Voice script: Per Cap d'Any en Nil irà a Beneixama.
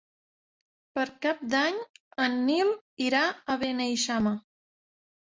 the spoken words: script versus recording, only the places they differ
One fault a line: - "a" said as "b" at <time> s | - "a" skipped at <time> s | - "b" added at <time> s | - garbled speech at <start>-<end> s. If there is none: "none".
none